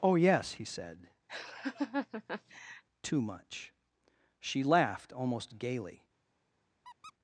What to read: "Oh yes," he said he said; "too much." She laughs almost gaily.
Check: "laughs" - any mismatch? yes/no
yes